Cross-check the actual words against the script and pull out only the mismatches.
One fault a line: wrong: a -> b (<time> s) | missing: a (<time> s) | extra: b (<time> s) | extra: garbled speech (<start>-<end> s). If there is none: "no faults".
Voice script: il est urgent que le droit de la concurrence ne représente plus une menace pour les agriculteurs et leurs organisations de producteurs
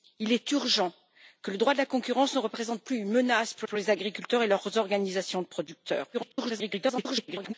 extra: pour (3.6 s)
extra: garbled speech (6.1-7.5 s)